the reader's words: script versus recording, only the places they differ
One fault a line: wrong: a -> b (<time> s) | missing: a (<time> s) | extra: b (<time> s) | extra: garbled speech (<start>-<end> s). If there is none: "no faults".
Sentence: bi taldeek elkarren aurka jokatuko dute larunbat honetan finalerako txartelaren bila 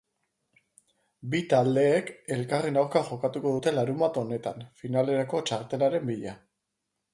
no faults